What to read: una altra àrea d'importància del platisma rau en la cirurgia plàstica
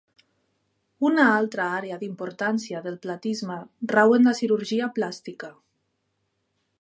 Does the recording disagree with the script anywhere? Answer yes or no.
no